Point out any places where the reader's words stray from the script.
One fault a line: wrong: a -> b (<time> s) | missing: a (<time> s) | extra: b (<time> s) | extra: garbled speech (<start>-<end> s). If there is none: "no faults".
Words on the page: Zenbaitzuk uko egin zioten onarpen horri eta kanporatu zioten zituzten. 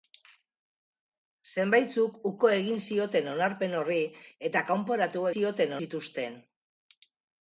no faults